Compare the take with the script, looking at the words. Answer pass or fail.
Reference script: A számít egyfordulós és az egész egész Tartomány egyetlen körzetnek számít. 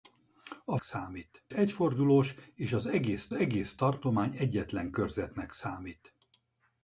pass